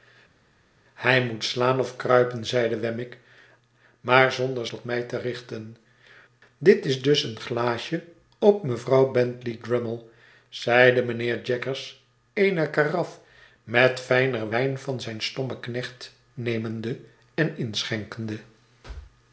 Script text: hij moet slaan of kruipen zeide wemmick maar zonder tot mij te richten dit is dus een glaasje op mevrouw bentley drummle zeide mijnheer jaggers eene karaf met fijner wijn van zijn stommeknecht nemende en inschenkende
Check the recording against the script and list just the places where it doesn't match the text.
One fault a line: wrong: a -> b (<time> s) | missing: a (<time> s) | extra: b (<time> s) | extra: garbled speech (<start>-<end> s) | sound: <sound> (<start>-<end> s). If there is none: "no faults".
no faults